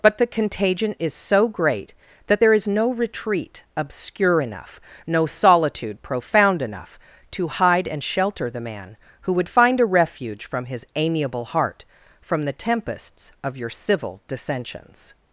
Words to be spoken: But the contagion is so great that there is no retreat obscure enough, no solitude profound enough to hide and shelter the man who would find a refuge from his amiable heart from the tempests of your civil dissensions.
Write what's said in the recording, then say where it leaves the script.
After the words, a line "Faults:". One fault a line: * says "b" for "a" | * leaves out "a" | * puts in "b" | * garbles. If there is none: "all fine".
But the contagion is so great that there is no retreat obscure enough, no solitude profound enough to hide and shelter the man who would find a refuge from his amiable heart from the tempests of your civil dissensions.
Faults:
all fine